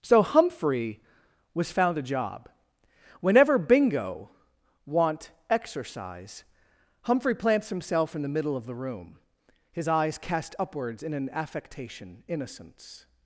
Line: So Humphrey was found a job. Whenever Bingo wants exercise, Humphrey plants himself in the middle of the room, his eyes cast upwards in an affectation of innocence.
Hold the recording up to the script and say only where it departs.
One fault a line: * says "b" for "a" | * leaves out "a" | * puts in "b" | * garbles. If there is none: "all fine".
* says "want" for "wants"
* leaves out "of"